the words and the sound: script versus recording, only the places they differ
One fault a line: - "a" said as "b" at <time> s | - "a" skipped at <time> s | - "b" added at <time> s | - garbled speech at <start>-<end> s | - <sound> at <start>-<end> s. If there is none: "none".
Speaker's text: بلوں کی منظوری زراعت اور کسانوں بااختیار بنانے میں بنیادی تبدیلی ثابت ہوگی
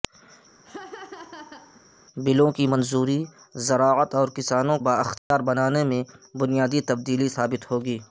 - laugh at 0.6-1.8 s
- dropout at 5.2-5.3 s